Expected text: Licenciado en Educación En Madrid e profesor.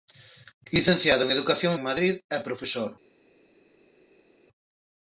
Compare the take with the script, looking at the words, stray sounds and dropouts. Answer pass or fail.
pass